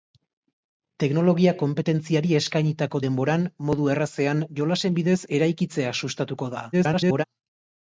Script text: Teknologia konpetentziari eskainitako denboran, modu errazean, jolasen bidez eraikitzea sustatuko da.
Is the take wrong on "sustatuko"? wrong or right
right